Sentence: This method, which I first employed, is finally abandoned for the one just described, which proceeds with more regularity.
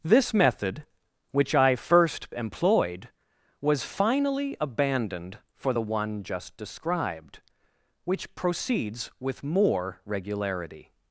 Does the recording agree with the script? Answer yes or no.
no